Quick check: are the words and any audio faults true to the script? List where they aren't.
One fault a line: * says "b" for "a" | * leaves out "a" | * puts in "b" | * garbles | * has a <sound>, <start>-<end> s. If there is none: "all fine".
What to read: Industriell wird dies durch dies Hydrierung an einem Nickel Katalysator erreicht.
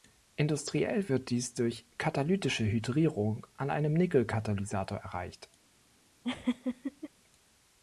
* says "katalytische" for "dies"
* has a laugh, 6.2-7.1 s